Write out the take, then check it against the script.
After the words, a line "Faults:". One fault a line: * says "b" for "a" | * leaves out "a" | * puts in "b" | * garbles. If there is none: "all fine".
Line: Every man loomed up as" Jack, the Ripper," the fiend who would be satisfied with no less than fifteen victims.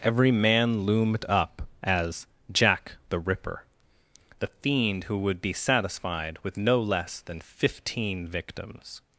Every man loomed up as" Jack, the Ripper," the fiend who would be satisfied with no less than fifteen victims.
Faults:
all fine